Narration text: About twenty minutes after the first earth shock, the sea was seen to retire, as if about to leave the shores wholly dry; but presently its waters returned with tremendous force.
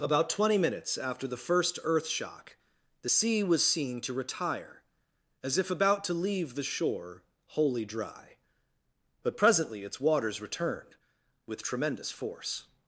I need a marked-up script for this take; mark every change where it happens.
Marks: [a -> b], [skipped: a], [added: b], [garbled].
About twenty minutes after the first earth shock, the sea was seen to retire, as if about to leave the [shores -> shore] wholly dry; but presently its waters returned with tremendous force.